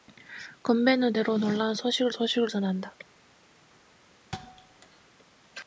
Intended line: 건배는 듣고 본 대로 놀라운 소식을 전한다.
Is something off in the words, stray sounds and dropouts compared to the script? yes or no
yes